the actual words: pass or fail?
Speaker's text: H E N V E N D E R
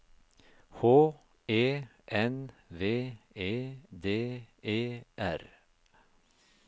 fail